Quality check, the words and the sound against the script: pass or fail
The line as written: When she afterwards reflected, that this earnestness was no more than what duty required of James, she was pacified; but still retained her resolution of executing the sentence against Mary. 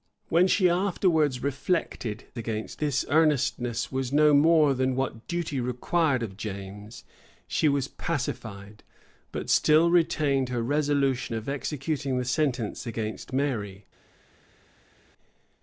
fail